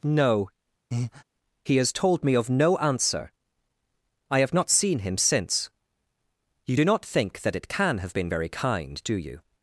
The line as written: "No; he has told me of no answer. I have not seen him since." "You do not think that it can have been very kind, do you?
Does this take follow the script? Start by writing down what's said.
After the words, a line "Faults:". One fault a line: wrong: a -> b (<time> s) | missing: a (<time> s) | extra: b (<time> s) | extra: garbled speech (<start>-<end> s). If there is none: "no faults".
"No; he has told me of no answer. I have not seen him since." "You do not think that it can have been very kind, do you?
Faults:
no faults